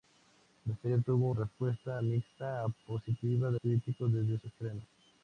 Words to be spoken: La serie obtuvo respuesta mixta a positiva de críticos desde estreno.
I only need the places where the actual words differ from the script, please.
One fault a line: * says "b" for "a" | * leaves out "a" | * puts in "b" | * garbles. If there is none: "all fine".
all fine